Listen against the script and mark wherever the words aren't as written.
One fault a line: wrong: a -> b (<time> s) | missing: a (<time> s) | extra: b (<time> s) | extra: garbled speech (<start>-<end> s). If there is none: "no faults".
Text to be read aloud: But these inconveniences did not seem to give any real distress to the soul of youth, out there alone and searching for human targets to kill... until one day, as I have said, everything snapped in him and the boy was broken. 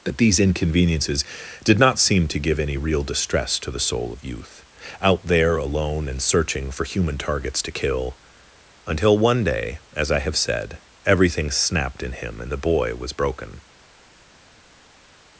no faults